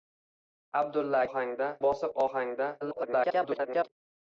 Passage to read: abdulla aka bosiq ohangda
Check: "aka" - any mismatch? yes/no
yes